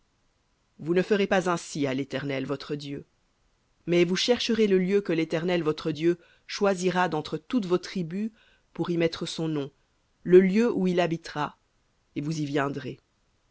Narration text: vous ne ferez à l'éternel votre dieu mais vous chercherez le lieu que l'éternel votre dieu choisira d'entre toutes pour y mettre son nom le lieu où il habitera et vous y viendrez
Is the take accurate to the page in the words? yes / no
no